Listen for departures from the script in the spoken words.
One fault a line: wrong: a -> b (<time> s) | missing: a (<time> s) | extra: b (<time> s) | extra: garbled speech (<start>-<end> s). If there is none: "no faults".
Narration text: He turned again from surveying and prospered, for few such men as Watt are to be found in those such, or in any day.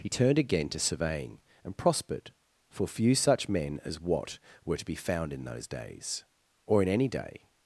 wrong: from -> to (0.7 s)
wrong: are -> were (4.7 s)
wrong: such -> days (5.7 s)